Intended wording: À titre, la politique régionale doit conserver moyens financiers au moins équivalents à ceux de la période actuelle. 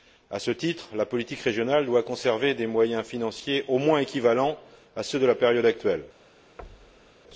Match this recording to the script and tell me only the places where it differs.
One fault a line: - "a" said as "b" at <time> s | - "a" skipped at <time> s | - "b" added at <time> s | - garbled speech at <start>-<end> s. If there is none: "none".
- "ce" added at 0.4 s
- "des" added at 2.5 s